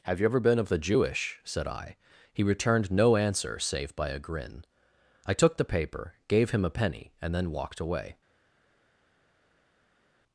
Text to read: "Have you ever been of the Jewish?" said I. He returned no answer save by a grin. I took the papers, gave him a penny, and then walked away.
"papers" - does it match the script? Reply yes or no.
no